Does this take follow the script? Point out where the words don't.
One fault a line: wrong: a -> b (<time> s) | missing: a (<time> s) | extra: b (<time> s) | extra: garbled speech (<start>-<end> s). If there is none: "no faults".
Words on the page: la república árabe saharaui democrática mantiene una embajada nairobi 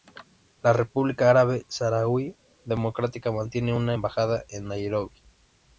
extra: en (4.5 s)